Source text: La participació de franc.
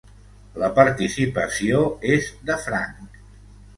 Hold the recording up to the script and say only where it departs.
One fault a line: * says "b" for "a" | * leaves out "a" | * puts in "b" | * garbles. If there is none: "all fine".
* puts in "és"